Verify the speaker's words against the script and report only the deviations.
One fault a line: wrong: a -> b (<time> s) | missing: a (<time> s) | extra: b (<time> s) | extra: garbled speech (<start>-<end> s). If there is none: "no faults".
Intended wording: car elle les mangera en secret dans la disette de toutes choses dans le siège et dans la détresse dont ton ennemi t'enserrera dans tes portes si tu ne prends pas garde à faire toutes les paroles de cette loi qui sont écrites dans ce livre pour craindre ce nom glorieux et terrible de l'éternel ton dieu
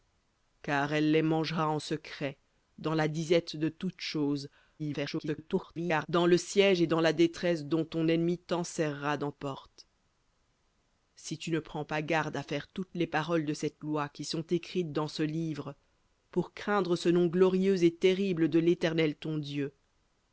extra: garbled speech (4.8-6.1 s)
missing: tes (9.3 s)